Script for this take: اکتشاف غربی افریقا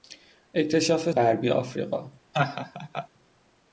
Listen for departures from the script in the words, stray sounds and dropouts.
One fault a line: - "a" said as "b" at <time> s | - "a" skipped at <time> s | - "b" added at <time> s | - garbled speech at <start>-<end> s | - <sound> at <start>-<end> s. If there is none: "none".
- laugh at 2.3-3.1 s